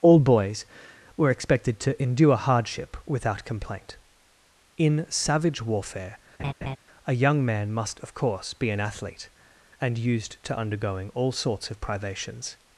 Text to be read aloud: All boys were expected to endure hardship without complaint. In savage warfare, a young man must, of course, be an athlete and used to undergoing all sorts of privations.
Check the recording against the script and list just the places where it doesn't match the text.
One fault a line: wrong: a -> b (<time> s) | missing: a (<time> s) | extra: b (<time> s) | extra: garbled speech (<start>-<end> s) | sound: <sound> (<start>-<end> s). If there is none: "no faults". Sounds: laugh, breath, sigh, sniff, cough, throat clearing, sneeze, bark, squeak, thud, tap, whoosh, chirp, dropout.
sound: laugh (6.4-6.8 s)